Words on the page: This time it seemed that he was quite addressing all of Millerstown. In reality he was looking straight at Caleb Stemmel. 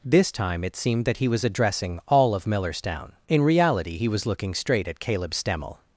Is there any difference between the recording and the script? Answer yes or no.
yes